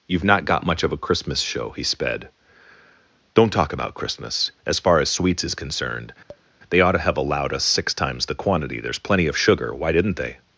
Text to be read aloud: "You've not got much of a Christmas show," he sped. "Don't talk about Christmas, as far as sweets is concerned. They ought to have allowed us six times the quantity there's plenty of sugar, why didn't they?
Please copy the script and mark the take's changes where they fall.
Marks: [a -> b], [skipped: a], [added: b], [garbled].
"You've not got much of a Christmas show," he sped. "Don't talk about Christmas, as far as sweets is concerned. They ought to have allowed us six times the quantity there's plenty of sugar, why didn't they?